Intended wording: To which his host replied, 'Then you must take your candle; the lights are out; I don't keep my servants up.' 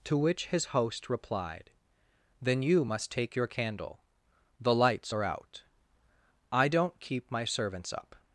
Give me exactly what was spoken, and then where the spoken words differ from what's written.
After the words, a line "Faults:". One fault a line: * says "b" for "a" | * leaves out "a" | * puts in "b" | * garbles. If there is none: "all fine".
To which his host replied, 'Then you must take your candle; the lights are out; I don't keep my servants up.'
Faults:
all fine